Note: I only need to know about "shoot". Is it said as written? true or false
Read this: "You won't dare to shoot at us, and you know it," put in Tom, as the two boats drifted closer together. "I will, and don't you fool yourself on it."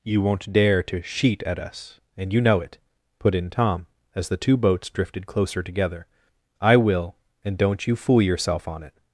false